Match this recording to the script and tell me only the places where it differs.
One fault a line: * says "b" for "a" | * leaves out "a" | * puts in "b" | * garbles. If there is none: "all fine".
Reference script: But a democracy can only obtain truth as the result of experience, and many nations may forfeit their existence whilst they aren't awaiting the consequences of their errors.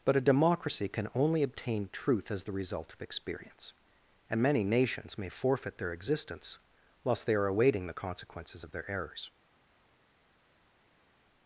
* says "are" for "aren't"